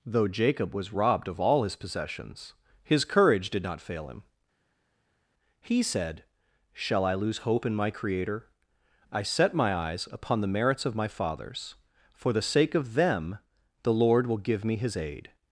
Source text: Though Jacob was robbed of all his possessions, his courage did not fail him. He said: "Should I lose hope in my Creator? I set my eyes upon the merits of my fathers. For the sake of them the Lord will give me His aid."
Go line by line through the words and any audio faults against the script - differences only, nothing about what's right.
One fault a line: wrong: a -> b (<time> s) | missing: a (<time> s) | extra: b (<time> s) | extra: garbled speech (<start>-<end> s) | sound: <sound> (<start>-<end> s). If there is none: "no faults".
wrong: Should -> Shall (6.7 s)